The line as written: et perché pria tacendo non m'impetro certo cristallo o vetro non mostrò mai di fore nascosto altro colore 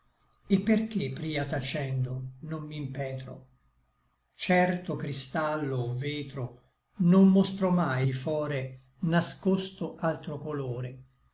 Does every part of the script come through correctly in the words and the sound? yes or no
yes